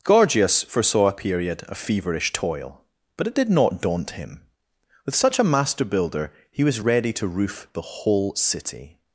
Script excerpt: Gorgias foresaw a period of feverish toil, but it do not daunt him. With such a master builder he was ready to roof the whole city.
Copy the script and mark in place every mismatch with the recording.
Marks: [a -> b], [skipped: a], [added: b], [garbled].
Gorgias foresaw a period of feverish toil, but it [do -> did] not daunt him. With such a master builder he was ready to roof the whole city.